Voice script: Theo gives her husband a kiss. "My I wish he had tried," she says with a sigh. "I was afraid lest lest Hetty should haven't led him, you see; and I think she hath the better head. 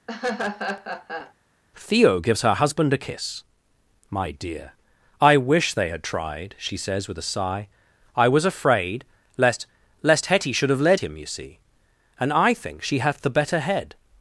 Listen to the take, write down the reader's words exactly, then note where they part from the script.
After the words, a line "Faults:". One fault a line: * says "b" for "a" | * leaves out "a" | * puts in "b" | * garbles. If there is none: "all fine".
Theo gives her husband a kiss. "My dear, I wish they had tried," she says with a sigh. "I was afraid lest lest Hetty should have led him, you see; and I think she hath the better head.
Faults:
* puts in "dear"
* says "they" for "he"
* says "have" for "haven't"